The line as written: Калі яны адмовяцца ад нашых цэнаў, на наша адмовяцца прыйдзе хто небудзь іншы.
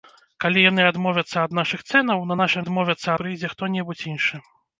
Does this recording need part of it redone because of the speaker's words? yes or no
no